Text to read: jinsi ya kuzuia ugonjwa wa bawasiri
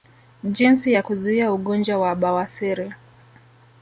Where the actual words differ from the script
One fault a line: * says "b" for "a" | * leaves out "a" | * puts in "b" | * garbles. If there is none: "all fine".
all fine